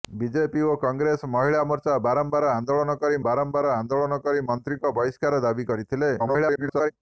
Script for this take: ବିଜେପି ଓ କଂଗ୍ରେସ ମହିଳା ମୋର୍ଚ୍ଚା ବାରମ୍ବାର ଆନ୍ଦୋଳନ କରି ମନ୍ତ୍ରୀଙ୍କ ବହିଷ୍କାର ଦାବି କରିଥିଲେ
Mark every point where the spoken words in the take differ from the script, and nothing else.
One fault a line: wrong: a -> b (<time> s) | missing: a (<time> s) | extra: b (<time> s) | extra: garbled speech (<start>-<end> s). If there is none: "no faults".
extra: ବାରମ୍ବାର ଆନ୍ଦୋଳନ କରି (3.2 s)
extra: garbled speech (6.2-6.9 s)